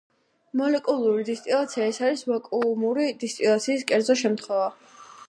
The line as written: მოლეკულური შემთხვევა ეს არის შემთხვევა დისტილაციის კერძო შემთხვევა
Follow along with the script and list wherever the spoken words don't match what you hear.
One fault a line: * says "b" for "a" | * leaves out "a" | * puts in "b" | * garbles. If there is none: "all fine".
* says "დისტილაცია" for "შემთხვევა"
* says "ვაკუუმური" for "შემთხვევა"